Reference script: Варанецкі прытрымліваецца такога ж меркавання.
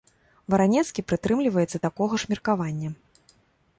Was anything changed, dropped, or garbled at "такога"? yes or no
no